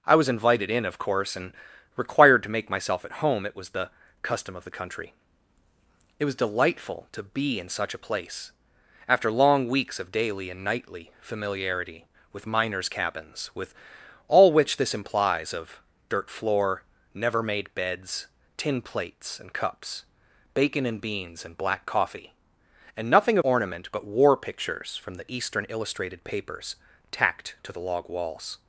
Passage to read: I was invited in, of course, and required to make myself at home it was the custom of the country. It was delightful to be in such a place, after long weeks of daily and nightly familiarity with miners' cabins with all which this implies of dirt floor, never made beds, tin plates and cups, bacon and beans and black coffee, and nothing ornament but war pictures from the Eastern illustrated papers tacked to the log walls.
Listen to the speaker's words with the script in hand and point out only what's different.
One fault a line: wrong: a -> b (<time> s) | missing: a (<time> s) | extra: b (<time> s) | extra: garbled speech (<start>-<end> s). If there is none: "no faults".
no faults